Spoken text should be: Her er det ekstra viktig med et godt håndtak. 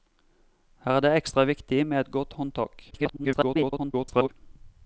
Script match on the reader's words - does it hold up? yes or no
no